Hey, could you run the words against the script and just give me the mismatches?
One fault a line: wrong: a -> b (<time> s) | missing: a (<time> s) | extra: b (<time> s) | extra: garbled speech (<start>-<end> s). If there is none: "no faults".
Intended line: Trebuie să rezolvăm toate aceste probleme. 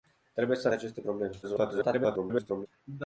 missing: rezolvăm toate (0.7 s)
extra: garbled speech (1.4-2.7 s)